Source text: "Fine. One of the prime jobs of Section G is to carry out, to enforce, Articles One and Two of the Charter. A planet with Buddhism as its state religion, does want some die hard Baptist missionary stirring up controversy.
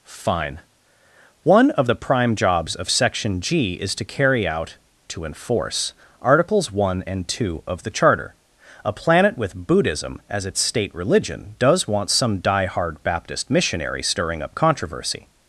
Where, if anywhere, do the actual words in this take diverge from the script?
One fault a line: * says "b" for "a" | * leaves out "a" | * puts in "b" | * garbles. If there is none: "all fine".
all fine